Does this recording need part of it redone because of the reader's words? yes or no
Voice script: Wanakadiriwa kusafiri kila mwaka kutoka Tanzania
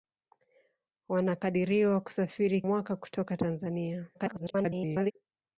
yes